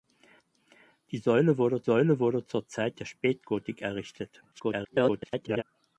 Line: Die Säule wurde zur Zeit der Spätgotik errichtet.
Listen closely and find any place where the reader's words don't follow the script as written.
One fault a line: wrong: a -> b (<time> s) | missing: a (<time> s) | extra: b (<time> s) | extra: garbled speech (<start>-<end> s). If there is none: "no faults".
extra: Säule wurde (1.8 s)
extra: garbled speech (4.5-5.6 s)